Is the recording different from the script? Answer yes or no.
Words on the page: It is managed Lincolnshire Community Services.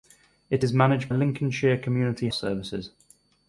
no